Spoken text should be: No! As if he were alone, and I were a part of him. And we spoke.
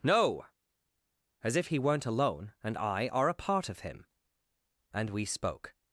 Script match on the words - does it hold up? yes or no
no